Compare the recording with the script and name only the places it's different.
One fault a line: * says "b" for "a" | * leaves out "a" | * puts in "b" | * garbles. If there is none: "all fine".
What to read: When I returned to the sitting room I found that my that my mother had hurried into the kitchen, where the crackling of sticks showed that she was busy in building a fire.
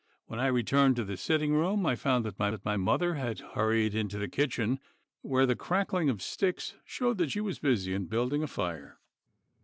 all fine